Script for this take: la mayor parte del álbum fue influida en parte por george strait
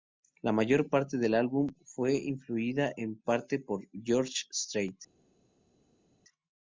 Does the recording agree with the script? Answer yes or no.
yes